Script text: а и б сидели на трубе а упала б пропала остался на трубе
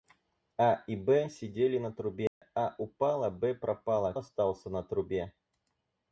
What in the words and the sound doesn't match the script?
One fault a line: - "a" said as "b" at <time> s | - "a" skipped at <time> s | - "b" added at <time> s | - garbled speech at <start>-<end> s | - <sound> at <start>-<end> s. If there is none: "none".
- dropout at 2.3-2.4 s